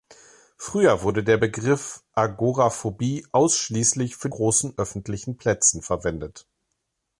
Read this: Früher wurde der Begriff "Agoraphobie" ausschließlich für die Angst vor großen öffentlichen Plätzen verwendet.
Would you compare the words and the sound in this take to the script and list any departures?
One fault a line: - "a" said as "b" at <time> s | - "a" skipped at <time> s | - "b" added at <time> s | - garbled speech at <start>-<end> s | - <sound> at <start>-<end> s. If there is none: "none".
- "die Angst vor" skipped at 4.3 s